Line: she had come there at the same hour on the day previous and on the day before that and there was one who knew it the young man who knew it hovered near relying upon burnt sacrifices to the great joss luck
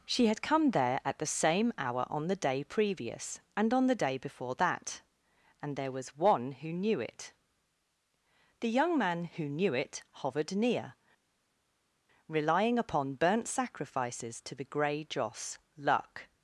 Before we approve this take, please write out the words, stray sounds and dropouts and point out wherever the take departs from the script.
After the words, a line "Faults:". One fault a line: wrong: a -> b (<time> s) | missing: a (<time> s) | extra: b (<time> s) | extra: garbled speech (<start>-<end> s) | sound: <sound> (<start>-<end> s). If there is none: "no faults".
she had come there at the same hour on the day previous and on the day before that and there was one who knew it the young man who knew it hovered near relying upon burnt sacrifices to the grey joss luck
Faults:
wrong: great -> grey (14.6 s)